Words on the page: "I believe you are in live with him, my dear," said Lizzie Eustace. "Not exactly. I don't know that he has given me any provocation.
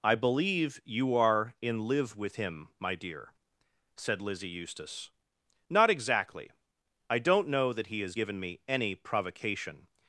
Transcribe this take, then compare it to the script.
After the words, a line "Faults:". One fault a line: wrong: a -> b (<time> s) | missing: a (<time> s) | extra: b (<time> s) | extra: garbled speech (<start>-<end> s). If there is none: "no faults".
"I believe you are in live with him, my dear," said Lizzie Eustace. "Not exactly. I don't know that he has given me any provocation.
Faults:
no faults